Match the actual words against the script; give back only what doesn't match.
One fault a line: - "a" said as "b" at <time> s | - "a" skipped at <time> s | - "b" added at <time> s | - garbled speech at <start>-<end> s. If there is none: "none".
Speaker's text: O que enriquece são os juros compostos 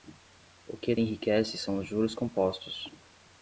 none